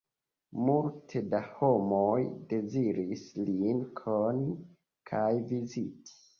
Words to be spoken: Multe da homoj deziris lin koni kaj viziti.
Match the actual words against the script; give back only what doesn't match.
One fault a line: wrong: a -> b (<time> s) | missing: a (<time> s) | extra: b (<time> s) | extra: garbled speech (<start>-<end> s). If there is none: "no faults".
no faults